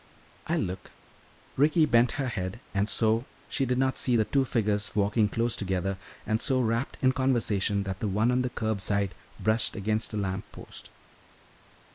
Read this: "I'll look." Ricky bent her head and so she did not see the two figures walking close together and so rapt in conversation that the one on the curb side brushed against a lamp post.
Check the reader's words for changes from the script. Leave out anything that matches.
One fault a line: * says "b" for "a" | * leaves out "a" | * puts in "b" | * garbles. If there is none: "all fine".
all fine